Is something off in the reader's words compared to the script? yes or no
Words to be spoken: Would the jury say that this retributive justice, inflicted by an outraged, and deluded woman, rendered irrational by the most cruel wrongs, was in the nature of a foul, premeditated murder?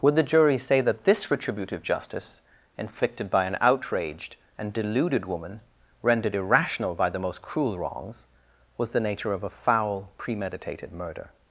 yes